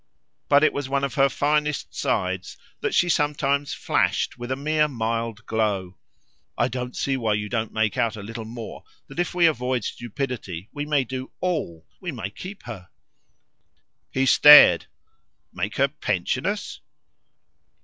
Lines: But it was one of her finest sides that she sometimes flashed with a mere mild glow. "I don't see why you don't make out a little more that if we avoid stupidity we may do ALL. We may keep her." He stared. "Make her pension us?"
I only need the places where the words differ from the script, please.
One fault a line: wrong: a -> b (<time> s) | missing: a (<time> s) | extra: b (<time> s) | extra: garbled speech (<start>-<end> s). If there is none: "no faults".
no faults